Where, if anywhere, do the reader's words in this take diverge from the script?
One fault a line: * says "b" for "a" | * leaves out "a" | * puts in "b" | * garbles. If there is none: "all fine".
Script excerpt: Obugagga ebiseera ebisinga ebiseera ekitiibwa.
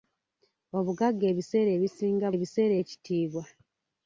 all fine